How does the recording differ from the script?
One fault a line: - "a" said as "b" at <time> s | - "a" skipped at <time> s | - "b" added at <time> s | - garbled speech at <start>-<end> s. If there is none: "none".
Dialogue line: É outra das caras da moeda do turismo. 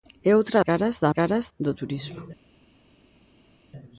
- "das" skipped at 0.6 s
- "moeda" said as "caras" at 1.1 s